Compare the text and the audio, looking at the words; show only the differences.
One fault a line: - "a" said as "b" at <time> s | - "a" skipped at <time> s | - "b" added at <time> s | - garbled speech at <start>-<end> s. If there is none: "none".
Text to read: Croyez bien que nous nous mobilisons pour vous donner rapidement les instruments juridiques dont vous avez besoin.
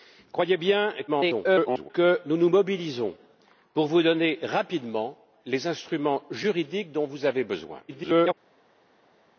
- garbled speech at 1.1-1.9 s
- garbled speech at 7.9-8.3 s